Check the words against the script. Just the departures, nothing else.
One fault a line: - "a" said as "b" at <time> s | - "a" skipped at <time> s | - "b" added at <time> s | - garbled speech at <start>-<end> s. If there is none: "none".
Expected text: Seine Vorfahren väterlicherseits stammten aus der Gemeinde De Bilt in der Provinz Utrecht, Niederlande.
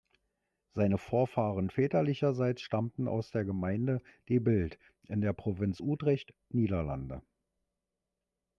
none